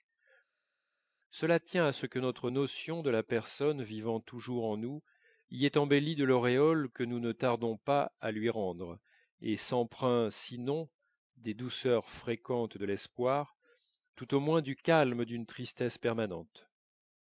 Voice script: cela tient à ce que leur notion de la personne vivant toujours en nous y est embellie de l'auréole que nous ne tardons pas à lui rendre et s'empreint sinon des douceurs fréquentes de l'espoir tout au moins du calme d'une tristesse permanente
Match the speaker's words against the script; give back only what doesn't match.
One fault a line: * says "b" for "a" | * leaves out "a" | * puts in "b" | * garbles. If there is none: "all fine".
* says "notre" for "leur"